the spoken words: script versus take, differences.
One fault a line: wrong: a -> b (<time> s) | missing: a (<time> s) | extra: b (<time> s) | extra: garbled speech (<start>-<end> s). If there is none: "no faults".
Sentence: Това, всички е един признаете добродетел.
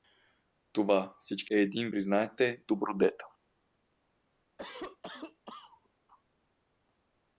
no faults